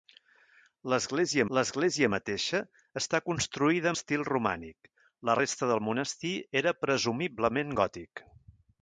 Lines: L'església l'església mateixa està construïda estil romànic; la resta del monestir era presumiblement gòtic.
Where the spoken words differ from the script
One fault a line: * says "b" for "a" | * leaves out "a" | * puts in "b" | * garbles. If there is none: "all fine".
all fine